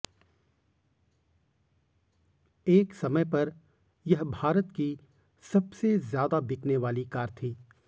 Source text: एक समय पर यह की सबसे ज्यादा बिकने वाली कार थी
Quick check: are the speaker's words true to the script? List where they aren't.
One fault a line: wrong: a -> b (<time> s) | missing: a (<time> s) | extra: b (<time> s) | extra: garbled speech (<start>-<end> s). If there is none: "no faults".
extra: भारत (4.2 s)